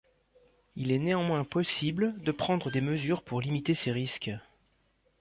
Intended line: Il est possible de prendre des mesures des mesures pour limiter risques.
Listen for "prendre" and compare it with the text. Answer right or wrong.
right